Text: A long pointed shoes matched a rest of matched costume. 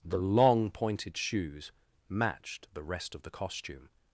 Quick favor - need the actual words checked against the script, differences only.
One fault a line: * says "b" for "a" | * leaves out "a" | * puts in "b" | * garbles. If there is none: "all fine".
* says "The" for "A"
* says "the" for "a"
* says "the" for "matched"